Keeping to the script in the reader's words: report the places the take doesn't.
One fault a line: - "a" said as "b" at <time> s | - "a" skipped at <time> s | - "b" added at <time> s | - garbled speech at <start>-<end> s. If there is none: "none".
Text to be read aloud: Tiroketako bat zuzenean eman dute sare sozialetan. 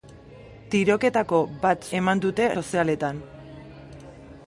- "zuzenean" skipped at 1.9 s
- "sare" skipped at 2.5 s